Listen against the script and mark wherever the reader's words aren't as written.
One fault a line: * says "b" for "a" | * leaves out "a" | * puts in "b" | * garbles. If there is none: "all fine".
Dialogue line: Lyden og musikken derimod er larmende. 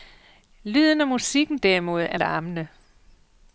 all fine